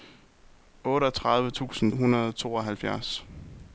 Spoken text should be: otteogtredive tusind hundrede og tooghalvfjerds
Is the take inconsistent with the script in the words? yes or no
no